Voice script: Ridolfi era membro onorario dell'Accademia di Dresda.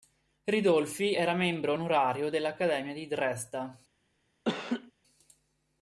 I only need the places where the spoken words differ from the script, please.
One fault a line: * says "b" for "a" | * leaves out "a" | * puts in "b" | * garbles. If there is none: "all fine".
all fine